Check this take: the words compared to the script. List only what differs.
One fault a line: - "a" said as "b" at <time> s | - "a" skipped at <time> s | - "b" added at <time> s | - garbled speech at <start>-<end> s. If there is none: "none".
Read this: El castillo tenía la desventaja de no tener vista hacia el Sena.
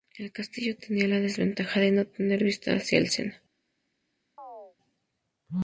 none